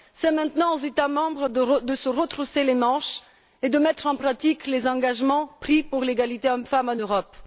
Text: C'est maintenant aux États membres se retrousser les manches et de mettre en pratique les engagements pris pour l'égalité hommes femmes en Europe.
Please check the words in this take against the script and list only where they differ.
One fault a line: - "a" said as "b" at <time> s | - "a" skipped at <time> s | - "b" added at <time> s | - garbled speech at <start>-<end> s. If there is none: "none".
- "de" added at 1.5 s